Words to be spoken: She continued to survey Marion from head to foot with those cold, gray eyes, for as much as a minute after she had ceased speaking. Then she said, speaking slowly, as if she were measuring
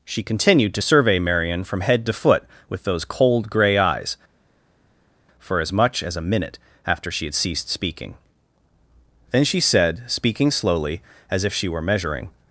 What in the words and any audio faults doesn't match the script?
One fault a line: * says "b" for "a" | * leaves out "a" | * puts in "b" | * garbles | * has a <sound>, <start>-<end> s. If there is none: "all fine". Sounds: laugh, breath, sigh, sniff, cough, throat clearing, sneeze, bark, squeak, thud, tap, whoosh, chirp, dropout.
all fine